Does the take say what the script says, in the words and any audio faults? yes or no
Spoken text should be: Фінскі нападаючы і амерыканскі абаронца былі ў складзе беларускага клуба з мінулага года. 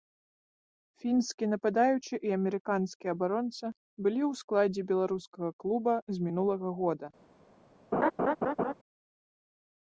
no